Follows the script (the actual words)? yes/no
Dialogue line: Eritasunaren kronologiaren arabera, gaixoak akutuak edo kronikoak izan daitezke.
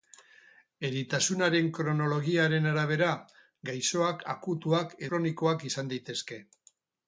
no